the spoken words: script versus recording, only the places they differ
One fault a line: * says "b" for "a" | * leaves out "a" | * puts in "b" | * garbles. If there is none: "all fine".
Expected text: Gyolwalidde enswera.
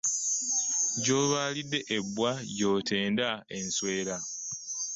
* puts in "ebbwa gy'otenda"